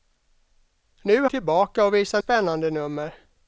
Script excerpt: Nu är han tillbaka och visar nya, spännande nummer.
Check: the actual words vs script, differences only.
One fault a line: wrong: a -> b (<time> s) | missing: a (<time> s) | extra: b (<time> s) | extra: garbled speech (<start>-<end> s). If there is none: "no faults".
missing: han (1.3 s)
missing: nya (2.2 s)